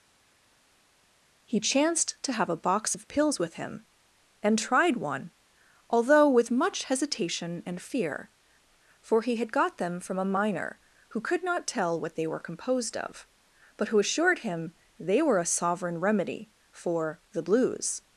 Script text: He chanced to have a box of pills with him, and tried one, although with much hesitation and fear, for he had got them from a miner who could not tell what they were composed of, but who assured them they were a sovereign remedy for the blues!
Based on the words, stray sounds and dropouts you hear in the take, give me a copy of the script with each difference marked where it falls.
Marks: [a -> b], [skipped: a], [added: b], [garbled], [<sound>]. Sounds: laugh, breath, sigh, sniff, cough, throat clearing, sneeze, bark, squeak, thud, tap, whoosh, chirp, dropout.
He chanced to have a box of pills with him, and tried one, although with much hesitation and fear, for he had got them from a miner who could not tell what they were composed of, but who assured [them -> him] they were a sovereign remedy for the blues!